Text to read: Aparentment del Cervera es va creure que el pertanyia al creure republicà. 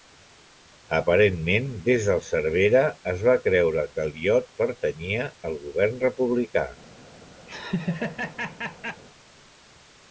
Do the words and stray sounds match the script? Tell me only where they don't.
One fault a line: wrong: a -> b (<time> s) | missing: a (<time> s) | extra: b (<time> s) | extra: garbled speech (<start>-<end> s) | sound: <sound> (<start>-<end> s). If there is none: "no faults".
extra: des (1.9 s)
extra: iot (4.2 s)
wrong: creure -> govern (5.7 s)
sound: laugh (7.5-9.0 s)